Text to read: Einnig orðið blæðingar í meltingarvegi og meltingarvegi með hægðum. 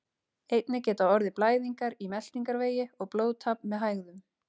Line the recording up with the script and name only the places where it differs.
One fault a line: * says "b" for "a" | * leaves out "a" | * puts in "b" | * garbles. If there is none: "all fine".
* puts in "geta"
* says "blóðtap" for "meltingarvegi"